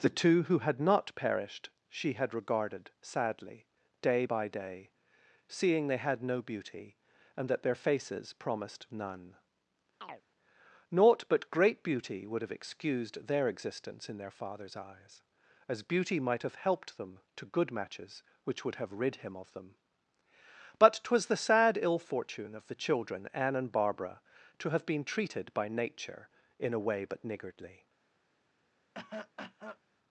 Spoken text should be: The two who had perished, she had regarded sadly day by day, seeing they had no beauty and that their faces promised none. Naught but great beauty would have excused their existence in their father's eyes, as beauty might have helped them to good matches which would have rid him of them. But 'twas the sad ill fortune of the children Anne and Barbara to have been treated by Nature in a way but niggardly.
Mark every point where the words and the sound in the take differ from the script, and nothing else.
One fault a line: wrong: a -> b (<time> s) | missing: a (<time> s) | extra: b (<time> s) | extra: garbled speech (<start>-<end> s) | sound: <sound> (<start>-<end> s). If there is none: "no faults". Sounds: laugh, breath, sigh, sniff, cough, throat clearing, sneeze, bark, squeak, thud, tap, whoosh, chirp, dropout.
extra: not (0.8 s)
sound: chirp (10.0-10.2 s)
sound: cough (28.9-29.8 s)